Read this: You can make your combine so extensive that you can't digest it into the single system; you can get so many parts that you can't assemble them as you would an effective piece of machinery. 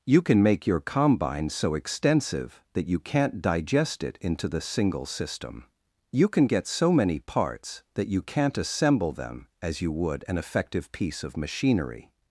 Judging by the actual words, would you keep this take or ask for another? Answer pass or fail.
pass